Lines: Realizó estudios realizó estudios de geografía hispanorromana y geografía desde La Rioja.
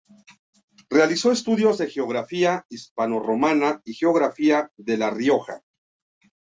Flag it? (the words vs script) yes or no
yes